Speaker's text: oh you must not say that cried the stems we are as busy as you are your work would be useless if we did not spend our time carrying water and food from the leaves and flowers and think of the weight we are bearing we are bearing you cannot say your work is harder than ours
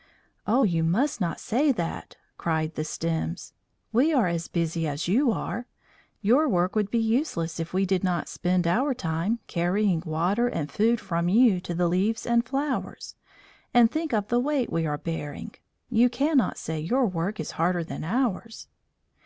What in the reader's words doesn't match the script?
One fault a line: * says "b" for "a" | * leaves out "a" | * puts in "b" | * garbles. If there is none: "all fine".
* puts in "you to"
* leaves out "we are bearing"